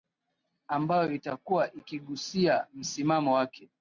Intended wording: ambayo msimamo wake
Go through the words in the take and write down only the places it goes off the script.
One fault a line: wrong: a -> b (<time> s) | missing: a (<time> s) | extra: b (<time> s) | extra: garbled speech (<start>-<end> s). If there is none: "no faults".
extra: itakuwa ikigusia (1.1 s)